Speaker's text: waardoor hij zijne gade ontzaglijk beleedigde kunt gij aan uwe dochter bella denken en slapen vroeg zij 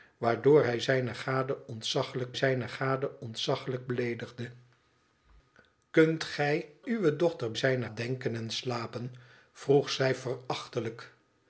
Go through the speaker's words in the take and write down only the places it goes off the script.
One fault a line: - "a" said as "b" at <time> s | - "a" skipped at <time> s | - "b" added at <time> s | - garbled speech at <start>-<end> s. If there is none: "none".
- "zijne gade ontzaglijk" added at 2.3 s
- "aan" skipped at 6.7 s
- "bella" said as "zijne" at 7.5 s